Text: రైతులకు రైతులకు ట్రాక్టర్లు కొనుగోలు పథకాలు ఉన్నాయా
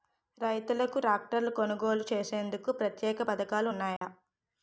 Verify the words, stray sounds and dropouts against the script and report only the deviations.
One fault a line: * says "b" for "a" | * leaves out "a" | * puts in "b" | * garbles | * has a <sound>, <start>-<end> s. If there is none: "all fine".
* leaves out "రైతులకు"
* puts in "చేసేందుకు ప్రత్యేక"
* has a dropout, 4.0-4.0 s